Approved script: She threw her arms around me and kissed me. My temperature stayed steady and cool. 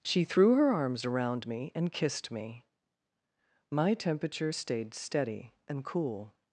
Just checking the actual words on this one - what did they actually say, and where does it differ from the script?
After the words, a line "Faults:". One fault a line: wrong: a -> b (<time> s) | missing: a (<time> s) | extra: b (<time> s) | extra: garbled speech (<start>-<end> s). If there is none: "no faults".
She threw her arms around me and kissed me. My temperature stayed steady and cool.
Faults:
no faults